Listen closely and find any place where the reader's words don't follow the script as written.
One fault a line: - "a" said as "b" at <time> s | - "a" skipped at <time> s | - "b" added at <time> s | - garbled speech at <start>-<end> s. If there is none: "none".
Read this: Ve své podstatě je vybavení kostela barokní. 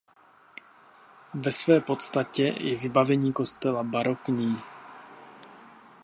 none